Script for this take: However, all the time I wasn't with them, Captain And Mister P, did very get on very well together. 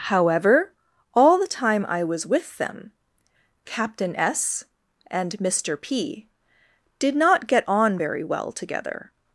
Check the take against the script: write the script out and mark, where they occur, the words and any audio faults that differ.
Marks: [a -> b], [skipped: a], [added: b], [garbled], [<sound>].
However, all the time I [wasn't -> was] with them, Captain [added: S] And Mister P, did [very -> not] get on very well together.